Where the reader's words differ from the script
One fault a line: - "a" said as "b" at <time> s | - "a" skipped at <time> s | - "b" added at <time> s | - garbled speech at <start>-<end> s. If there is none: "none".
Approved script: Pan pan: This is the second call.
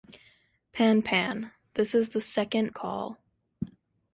none